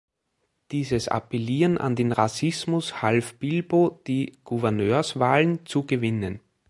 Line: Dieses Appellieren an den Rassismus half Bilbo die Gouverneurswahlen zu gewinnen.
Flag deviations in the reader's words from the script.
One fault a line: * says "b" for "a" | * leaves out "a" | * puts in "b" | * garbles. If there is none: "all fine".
all fine